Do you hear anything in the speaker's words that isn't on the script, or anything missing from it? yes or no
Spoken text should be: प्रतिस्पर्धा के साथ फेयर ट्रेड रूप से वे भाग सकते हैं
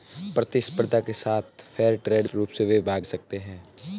no